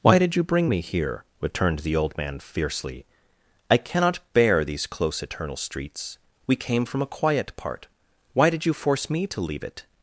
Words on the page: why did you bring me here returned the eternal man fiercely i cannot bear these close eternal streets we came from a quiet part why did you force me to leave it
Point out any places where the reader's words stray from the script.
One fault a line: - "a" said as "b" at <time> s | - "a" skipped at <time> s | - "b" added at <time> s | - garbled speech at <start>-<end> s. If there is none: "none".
- "eternal" said as "old" at 2.0 s